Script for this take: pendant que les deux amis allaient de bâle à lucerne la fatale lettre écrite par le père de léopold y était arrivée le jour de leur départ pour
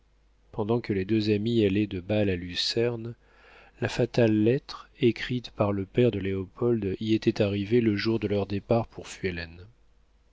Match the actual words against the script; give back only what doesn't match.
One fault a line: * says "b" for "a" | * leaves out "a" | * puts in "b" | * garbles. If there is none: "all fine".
all fine